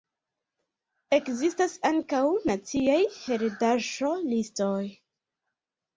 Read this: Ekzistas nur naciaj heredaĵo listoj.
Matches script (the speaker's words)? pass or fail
fail